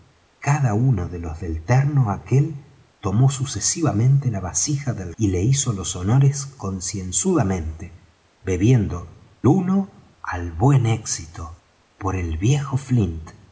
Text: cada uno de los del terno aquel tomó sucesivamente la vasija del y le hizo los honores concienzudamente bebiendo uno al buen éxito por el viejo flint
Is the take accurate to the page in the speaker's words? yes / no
yes